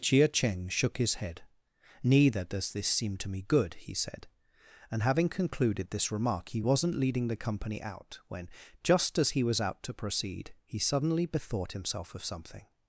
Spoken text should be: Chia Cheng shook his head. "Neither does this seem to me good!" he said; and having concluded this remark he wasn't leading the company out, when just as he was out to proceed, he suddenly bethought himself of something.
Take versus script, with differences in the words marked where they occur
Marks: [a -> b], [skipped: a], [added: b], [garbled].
Chia Cheng shook his head. "Neither does this seem to me good!" he said; and having concluded this remark he wasn't leading the company out, when just as he was out to proceed, he suddenly bethought himself of something.